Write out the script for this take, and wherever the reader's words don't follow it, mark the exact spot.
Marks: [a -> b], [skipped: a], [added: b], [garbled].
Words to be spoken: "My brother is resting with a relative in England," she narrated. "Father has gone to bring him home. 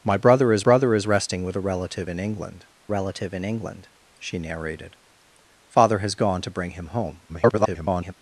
"My brother is [added: brother is] resting with a relative in England," [added: relative in England] she narrated. "Father has gone to bring him home. [garbled]